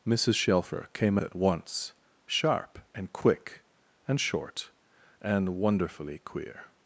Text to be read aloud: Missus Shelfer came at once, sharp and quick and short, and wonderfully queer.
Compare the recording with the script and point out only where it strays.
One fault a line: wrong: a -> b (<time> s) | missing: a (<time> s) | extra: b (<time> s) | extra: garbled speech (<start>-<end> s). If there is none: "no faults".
no faults